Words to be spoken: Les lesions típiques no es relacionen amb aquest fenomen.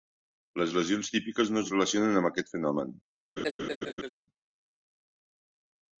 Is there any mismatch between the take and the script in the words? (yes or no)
no